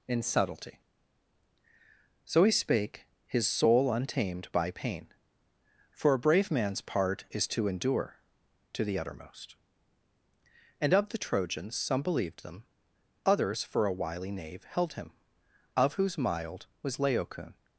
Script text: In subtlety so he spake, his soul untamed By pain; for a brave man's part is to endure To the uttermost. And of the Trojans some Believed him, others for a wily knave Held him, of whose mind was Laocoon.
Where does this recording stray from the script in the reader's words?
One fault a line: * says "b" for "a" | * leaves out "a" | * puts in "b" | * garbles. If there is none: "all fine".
* says "them" for "him"
* says "mild" for "mind"